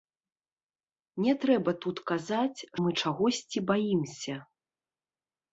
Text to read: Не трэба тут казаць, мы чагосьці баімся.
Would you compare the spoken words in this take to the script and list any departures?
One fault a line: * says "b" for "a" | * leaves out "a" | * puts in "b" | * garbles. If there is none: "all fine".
all fine